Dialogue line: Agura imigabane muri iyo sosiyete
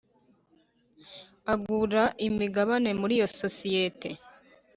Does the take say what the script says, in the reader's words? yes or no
yes